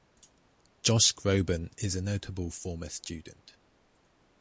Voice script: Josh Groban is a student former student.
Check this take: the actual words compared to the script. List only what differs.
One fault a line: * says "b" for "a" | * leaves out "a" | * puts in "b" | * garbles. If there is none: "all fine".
* says "notable" for "student"